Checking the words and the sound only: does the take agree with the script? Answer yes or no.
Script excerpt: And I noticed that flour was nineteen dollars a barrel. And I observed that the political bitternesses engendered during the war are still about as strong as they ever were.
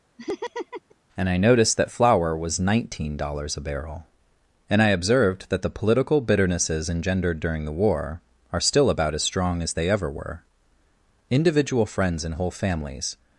no